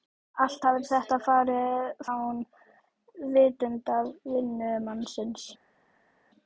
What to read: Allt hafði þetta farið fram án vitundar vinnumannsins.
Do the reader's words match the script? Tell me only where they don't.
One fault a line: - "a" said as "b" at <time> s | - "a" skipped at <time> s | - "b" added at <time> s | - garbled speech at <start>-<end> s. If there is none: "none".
- "fram" skipped at 2.0 s